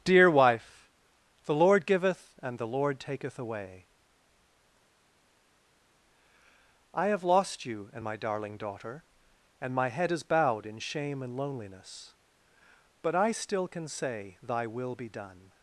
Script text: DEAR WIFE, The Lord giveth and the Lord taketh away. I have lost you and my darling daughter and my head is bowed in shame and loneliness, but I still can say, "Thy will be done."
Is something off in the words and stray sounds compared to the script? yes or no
no